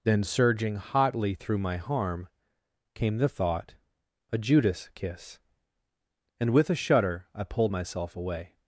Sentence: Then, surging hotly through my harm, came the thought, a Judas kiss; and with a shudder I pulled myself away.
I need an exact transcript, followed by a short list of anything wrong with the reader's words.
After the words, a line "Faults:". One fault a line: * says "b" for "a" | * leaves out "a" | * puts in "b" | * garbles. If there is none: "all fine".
Then, surging hotly through my harm, came the thought, a Judas kiss; and with a shudder I pulled myself away.
Faults:
all fine